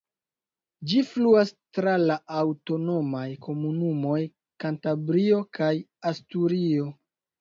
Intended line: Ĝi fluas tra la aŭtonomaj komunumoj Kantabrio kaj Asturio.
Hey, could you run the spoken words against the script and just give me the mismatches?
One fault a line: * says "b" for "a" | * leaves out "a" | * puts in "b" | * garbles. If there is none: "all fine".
all fine